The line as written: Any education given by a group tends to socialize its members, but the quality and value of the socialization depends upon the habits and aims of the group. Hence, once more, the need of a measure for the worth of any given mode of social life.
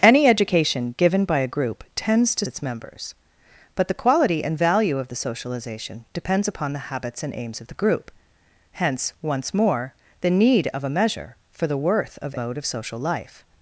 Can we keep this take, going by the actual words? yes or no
no